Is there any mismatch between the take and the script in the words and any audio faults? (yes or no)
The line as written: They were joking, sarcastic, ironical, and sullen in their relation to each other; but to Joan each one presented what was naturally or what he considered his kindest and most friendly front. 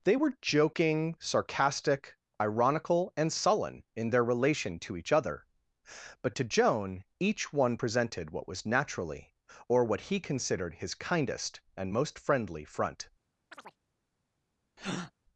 yes